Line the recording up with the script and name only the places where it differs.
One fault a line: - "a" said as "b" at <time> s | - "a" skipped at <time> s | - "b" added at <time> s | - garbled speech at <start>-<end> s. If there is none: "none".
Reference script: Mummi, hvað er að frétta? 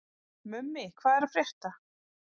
none